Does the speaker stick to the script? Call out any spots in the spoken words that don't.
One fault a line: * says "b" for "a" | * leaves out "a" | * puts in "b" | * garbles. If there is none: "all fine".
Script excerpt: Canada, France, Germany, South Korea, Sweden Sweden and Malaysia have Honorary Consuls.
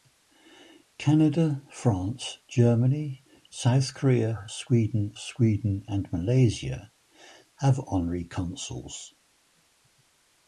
all fine